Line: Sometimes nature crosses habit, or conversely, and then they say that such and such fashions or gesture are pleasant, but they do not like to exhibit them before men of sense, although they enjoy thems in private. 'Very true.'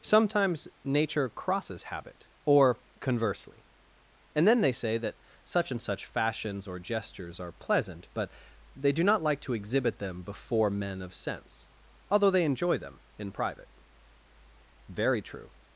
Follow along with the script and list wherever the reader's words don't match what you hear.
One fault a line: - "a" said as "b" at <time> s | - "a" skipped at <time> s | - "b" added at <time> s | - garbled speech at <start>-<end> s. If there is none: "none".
- "gesture" said as "gestures" at 6.8 s
- "thems" said as "them" at 12.8 s